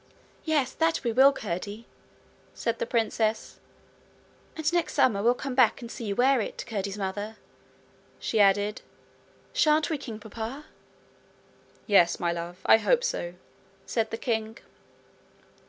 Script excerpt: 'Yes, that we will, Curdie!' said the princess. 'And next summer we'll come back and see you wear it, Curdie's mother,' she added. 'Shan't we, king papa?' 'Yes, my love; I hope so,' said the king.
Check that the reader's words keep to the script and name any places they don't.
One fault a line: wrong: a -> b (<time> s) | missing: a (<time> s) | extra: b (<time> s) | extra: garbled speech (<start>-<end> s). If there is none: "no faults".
no faults